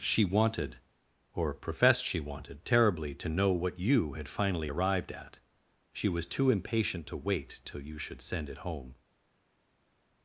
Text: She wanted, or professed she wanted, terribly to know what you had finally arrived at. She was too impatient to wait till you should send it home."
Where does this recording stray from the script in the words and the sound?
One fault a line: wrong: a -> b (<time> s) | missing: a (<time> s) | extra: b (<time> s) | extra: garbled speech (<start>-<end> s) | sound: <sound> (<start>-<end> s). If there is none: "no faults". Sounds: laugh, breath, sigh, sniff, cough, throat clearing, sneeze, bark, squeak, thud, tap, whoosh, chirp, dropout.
no faults